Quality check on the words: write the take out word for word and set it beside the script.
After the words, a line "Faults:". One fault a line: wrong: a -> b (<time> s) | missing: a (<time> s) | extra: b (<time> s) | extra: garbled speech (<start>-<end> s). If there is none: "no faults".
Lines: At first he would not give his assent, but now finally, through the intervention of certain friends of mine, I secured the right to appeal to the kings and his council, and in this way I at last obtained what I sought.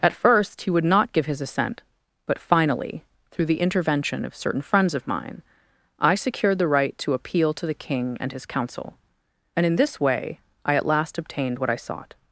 At first he would not give his assent, but finally, through the intervention of certain friends of mine, I secured the right to appeal to the king and his council, and in this way I at last obtained what I sought.
Faults:
missing: now (2.4 s)
wrong: kings -> king (7.7 s)